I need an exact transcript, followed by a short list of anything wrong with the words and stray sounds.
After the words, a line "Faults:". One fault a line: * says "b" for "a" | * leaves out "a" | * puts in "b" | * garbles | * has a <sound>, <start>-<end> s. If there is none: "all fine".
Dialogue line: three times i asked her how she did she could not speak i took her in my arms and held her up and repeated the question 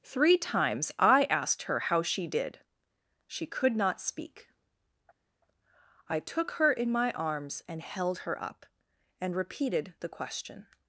three times i asked her how she did she could not speak i took her in my arms and held her up and repeated the question
Faults:
all fine